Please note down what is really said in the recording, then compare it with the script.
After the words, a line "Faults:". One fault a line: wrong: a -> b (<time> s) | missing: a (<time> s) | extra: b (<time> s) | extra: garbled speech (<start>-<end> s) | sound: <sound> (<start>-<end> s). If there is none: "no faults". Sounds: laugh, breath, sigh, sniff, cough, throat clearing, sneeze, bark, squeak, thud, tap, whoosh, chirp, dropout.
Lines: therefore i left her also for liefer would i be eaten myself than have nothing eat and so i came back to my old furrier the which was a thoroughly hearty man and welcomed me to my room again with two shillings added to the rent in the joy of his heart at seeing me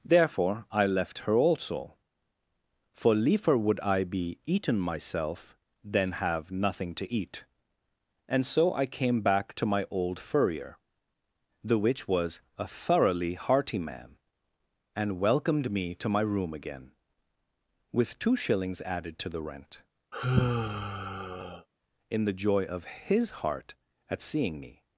therefore i left her also for liefer would i be eaten myself than have nothing to eat and so i came back to my old furrier the which was a thoroughly hearty man and welcomed me to my room again with two shillings added to the rent in the joy of his heart at seeing me
Faults:
extra: to (7.0 s)
sound: sigh (20.1-21.7 s)